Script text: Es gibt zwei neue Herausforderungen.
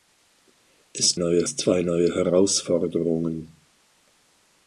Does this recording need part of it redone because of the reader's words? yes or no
yes